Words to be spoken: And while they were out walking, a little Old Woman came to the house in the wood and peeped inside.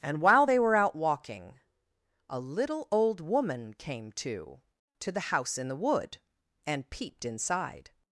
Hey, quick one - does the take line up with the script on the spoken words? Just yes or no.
no